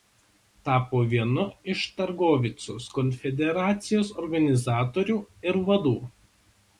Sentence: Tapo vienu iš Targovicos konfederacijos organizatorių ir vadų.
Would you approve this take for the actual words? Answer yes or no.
yes